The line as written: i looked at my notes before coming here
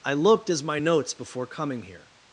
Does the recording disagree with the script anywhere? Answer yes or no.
yes